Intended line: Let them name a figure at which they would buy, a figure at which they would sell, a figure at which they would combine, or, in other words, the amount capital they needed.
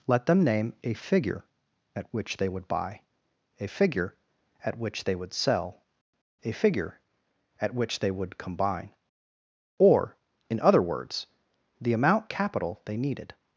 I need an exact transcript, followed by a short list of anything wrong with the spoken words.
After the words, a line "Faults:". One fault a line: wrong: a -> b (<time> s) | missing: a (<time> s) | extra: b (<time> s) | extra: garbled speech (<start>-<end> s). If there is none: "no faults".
Let them name a figure at which they would buy, a figure at which they would sell, a figure at which they would combine, or, in other words, the amount capital they needed.
Faults:
no faults